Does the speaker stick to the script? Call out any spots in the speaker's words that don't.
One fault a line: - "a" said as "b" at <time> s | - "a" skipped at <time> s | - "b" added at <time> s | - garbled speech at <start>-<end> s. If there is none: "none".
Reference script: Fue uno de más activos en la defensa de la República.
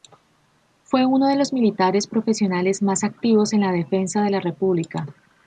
- "los militares profesionales" added at 1.4 s